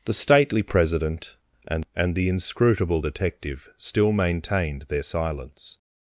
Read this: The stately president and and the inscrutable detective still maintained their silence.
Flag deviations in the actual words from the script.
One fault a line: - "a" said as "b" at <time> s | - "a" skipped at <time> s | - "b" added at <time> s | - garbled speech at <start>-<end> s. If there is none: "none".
none